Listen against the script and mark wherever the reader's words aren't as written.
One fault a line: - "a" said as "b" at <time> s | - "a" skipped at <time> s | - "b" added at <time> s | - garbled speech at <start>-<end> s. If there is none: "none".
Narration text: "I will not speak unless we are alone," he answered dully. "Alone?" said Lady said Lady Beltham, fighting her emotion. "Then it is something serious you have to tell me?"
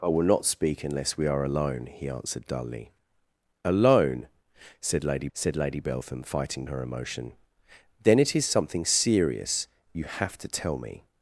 none